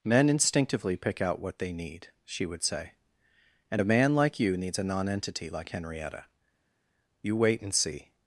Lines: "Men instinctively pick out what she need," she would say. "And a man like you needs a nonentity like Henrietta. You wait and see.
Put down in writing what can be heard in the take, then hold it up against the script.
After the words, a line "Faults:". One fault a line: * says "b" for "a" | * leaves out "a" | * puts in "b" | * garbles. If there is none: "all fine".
"Men instinctively pick out what they need," she would say. "And a man like you needs a nonentity like Henrietta. You wait and see.
Faults:
* says "they" for "she"